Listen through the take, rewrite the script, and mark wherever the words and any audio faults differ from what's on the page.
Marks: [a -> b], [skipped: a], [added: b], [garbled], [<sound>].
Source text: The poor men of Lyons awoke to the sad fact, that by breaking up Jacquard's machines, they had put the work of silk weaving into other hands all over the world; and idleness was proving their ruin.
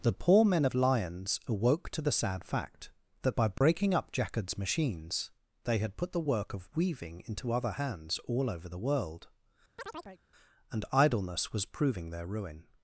The poor men of Lyons awoke to the sad fact, that by breaking [dropout] up Jacquard's machines, they had put the work of [skipped: silk] weaving into other hands all over the world; [chirp] and idleness was proving their ruin.